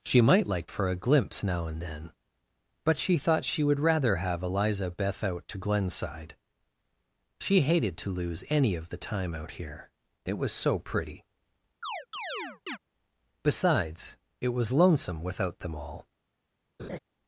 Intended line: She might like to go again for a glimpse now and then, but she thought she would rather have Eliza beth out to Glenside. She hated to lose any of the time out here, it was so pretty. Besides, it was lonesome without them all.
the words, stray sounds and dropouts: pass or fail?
fail